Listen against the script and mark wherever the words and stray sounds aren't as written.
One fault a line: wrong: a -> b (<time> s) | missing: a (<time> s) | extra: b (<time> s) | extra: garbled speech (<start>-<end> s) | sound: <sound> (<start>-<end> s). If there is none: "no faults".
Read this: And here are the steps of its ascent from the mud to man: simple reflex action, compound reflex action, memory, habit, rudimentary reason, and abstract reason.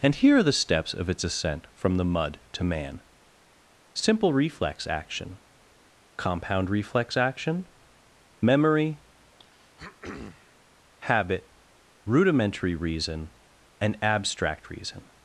sound: throat clearing (9.4-10.6 s)